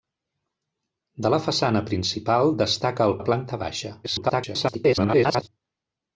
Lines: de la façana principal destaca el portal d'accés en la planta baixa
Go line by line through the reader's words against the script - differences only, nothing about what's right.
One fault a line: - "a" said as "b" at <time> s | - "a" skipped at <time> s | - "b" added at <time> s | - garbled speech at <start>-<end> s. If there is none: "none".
- "portal d'accés en" skipped at 3.1 s
- garbled speech at 4.0-5.5 s